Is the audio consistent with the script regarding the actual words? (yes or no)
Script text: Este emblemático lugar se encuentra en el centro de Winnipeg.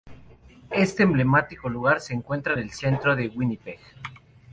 no